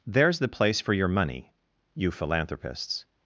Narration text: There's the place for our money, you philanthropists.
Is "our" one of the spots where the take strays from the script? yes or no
yes